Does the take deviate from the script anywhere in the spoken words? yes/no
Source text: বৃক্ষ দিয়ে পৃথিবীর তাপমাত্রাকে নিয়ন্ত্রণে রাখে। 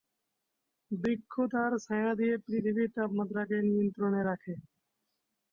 yes